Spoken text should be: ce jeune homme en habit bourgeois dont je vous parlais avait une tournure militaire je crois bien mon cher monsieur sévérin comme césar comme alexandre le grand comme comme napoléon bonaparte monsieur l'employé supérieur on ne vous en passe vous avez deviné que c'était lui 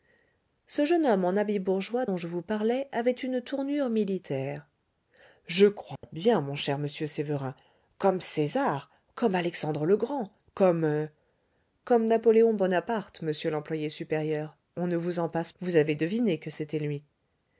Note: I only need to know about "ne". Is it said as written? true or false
true